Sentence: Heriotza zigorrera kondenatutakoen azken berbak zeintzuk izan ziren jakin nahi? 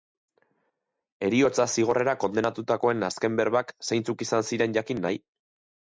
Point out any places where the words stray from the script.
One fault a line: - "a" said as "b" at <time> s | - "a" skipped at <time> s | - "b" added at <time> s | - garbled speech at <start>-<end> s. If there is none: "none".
none